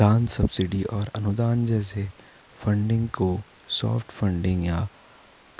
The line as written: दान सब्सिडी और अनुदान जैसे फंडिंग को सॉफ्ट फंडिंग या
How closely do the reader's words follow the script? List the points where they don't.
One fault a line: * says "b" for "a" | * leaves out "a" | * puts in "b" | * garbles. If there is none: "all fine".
all fine